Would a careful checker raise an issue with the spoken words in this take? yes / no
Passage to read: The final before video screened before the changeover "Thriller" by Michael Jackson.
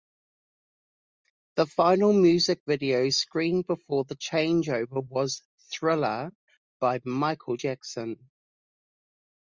yes